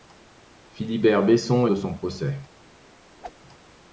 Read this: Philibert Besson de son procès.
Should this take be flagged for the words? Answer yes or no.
no